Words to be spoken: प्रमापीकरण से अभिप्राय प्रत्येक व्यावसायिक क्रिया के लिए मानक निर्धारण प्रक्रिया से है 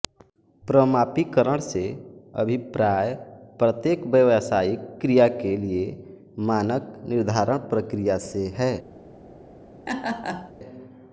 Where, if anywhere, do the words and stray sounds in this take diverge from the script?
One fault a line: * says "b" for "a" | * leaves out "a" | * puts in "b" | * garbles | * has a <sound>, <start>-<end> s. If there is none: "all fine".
* has a laugh, 9.9-10.5 s